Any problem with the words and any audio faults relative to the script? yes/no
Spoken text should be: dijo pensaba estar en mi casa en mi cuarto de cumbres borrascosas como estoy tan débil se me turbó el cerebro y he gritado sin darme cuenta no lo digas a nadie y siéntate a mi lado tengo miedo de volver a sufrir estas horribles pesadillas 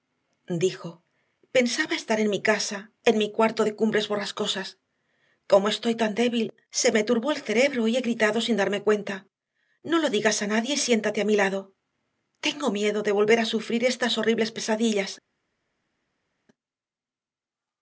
no